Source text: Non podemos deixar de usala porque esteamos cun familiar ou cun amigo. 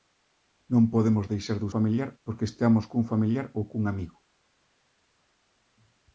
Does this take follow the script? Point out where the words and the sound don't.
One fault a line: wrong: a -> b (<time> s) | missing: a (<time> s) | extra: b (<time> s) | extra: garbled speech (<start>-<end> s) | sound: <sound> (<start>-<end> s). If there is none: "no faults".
wrong: usala -> familiar (1.7 s)